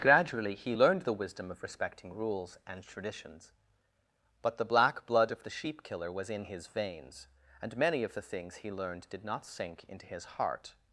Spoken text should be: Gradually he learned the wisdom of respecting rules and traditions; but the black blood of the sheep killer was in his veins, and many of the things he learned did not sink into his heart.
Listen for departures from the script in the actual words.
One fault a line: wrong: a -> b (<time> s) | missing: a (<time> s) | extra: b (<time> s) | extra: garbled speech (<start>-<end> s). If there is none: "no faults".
no faults